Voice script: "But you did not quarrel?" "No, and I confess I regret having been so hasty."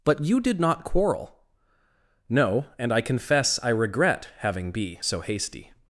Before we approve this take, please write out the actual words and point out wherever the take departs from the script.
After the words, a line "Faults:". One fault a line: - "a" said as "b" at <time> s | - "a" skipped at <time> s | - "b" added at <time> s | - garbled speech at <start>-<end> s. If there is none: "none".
"But you did not quarrel?" "No, and I confess I regret having be so hasty."
Faults:
- "been" said as "be" at 4.7 s